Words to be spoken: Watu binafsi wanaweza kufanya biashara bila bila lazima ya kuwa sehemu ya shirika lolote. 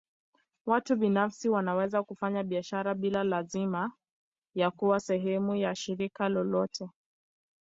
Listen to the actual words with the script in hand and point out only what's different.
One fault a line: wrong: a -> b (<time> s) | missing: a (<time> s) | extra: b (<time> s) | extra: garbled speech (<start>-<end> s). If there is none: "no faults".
missing: bila (3.2 s)